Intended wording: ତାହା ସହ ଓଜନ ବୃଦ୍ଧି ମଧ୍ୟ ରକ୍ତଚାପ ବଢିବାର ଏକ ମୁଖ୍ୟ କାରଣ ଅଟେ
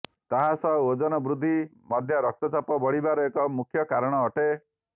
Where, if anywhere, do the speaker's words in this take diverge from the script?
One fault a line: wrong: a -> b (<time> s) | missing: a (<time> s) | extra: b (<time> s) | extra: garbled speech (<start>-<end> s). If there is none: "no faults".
no faults